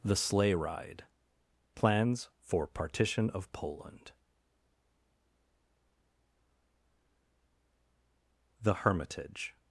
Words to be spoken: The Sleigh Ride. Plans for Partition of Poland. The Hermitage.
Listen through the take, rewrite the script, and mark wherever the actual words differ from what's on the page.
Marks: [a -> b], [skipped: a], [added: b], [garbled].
The Sleigh Ride. Plans for Partition of Poland. The Hermitage.